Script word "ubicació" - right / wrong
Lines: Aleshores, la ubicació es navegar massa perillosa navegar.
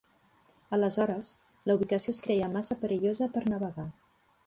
right